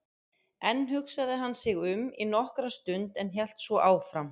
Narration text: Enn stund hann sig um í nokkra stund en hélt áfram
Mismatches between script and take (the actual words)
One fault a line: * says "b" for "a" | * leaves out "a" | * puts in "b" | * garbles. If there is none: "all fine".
* says "hugsaði" for "stund"
* puts in "svo"